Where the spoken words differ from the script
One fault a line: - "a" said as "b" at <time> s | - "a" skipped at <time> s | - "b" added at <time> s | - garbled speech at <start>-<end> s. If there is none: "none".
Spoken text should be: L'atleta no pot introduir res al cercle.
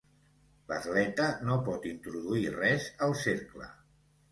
none